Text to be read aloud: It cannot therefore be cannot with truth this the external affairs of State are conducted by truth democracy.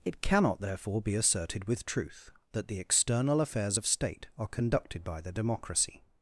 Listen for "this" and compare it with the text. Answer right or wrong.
wrong